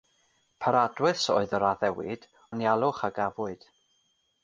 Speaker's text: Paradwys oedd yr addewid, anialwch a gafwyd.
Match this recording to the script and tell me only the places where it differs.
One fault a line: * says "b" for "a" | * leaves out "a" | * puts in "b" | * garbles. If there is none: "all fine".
all fine